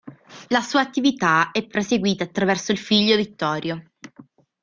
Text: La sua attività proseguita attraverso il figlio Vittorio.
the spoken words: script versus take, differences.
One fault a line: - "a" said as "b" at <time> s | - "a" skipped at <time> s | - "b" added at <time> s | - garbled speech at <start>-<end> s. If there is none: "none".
- "è" added at 1.5 s